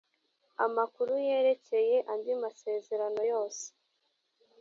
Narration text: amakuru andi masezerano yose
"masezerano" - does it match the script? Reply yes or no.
yes